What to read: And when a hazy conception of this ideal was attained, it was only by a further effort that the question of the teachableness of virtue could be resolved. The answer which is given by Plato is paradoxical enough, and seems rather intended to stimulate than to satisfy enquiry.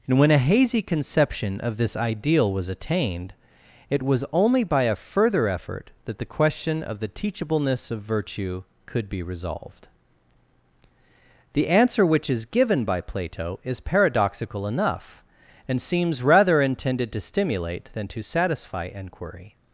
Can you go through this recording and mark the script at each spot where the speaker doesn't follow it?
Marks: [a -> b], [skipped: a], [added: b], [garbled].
And when a hazy conception of this ideal was attained, it was only by a further effort that the question of the teachableness of virtue could be resolved. The answer which is given by Plato is paradoxical enough, and seems rather intended to stimulate than to satisfy enquiry.